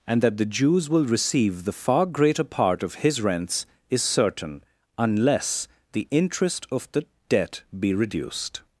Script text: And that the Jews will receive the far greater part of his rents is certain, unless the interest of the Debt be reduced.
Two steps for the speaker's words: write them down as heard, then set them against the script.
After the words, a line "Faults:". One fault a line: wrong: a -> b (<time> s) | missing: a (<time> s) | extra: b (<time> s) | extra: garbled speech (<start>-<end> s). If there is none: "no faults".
And that the Jews will receive the far greater part of his rents is certain, unless the interest of the Debt be reduced.
Faults:
no faults